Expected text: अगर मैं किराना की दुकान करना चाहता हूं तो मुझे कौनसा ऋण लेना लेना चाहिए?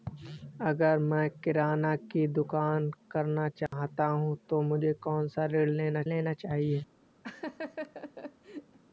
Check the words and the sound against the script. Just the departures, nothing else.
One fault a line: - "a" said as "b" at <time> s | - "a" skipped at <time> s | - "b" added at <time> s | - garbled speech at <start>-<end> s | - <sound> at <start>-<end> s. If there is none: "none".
- dropout at 3.7-3.7 s
- laugh at 7.2-8.8 s